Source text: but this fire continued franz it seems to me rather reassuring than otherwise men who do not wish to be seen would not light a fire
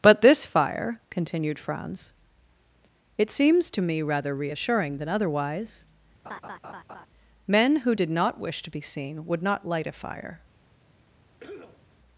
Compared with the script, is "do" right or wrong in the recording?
wrong